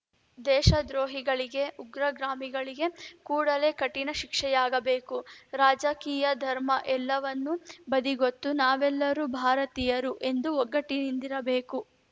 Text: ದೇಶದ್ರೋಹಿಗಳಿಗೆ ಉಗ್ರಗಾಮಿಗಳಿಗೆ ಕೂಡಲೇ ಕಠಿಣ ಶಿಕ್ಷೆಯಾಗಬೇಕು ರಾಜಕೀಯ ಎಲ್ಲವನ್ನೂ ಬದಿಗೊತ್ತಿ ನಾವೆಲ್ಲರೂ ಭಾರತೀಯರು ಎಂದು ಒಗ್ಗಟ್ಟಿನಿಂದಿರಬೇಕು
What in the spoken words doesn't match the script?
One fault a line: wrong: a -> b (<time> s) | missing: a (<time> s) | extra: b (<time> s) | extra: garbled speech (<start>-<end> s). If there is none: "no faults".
extra: ಧರ್ಮ (6.4 s)